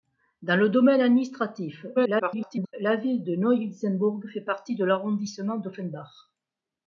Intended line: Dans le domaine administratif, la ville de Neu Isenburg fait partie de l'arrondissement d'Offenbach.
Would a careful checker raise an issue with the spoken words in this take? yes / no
yes